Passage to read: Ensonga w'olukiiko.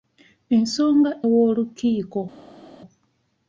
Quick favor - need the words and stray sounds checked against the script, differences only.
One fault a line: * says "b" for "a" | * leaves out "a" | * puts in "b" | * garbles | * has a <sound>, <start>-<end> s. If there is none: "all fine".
all fine